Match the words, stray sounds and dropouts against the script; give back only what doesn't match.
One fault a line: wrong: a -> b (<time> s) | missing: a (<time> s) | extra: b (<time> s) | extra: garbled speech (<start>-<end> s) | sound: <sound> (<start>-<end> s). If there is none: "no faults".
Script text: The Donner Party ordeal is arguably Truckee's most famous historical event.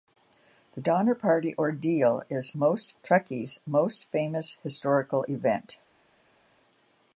wrong: arguably -> most (2.5 s)